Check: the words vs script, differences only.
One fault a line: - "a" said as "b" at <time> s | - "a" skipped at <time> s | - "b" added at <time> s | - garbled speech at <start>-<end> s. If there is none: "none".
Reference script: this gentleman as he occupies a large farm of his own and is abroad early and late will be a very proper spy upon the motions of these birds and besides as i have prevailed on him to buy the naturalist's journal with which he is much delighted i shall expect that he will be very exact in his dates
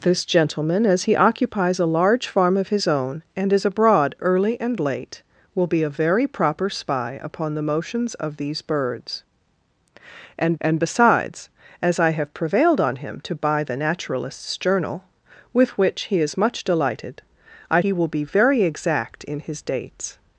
- "and" added at 10.6 s
- "shall expect that" skipped at 17.8 s